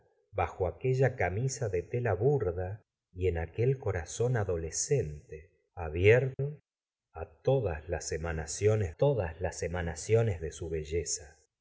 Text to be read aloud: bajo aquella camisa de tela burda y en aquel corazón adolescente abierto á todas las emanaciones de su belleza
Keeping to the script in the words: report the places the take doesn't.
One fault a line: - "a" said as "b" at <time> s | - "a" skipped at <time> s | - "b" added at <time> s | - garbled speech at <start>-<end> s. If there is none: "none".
- "todas las emanaciones" added at 9.0 s